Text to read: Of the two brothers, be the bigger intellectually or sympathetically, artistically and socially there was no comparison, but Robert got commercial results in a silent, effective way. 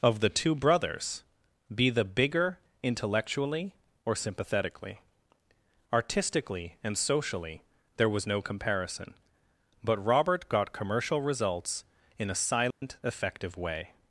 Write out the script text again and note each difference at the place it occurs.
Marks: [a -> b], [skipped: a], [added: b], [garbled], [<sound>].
Of the two brothers, be the bigger intellectually or sympathetically, artistically and socially there was no comparison, but Robert got commercial results in a silent, [dropout] effective way.